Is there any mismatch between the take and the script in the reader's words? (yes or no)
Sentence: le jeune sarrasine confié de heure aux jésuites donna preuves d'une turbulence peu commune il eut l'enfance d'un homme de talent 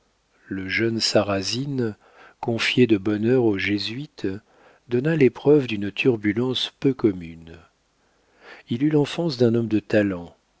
yes